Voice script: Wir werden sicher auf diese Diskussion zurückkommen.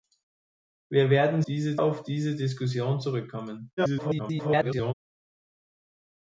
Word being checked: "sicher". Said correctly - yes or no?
no